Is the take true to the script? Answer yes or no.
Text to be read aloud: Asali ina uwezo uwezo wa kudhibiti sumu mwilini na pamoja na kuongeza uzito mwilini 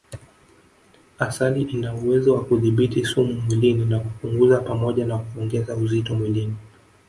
no